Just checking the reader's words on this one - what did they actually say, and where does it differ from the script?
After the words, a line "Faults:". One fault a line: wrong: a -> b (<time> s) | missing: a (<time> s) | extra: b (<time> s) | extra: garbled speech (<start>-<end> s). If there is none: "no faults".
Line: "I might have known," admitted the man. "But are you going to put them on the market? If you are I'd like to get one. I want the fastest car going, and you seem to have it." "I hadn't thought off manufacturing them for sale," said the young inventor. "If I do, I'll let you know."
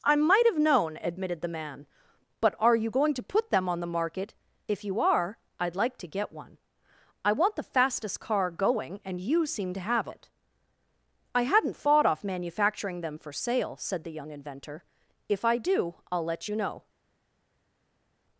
"I might have known," admitted the man. "But are you going to put them on the market? If you are I'd like to get one. I want the fastest car going, and you seem to have it." "I hadn't thought off manufacturing them for sale," said the young inventor. "If I do, I'll let you know."
Faults:
no faults